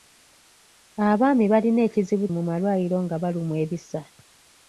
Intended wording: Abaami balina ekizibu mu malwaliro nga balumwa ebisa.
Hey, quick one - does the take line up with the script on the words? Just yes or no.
yes